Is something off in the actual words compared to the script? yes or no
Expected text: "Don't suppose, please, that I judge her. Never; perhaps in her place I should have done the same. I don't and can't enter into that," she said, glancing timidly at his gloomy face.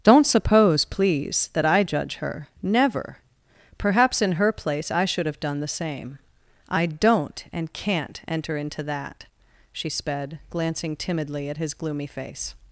yes